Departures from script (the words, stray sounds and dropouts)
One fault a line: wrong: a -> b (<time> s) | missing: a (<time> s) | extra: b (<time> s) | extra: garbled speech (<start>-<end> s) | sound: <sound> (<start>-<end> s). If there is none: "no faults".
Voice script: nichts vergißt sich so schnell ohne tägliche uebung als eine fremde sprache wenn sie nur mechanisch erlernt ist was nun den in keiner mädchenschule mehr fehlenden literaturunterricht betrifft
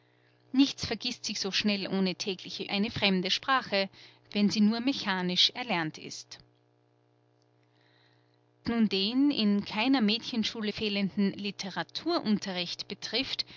missing: uebung als (2.7 s)
missing: was (6.4 s)
missing: mehr (10.7 s)